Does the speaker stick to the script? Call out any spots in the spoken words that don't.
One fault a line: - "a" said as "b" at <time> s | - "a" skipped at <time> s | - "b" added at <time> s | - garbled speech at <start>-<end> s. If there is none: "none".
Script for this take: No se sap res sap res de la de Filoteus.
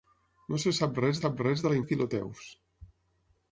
none